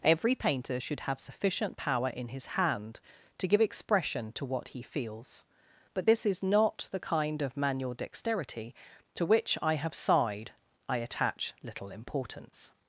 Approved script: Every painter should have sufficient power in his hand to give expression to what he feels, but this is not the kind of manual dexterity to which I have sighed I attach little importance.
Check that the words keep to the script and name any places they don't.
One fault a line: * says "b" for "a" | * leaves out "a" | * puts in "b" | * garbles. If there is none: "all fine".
all fine